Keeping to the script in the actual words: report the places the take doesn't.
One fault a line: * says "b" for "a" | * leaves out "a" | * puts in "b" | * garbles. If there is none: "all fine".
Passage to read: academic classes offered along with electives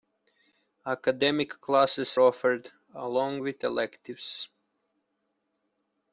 all fine